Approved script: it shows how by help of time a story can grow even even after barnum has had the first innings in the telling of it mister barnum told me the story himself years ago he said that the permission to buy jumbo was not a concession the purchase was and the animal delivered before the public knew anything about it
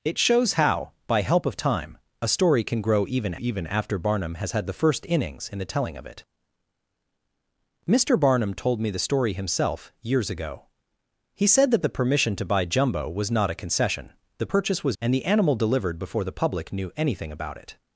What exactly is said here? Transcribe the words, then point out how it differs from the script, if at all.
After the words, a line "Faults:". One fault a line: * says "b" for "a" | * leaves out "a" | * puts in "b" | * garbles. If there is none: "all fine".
it shows how by help of time a story can grow even even after barnum has had the first innings in the telling of it mister barnum told me the story himself years ago he said that the permission to buy jumbo was not a concession the purchase was and the animal delivered before the public knew anything about it
Faults:
all fine